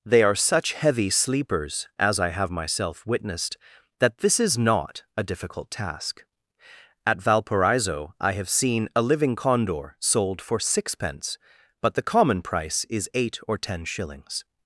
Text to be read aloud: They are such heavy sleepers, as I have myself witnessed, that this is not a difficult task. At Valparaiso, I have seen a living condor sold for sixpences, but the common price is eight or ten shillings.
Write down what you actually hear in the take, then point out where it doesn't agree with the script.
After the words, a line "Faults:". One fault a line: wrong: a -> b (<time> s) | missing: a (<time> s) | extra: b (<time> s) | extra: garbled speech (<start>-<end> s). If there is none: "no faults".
They are such heavy sleepers, as I have myself witnessed, that this is not a difficult task. At Valparaiso, I have seen a living condor sold for sixpence, but the common price is eight or ten shillings.
Faults:
wrong: sixpences -> sixpence (10.6 s)